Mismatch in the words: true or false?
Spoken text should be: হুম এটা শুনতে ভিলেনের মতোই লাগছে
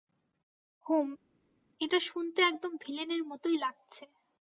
true